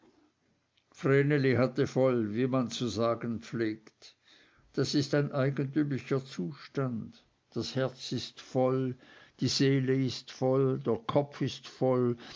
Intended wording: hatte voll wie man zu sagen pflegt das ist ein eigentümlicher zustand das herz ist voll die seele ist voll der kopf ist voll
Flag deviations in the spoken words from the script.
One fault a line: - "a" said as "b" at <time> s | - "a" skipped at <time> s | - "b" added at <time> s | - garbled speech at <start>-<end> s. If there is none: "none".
none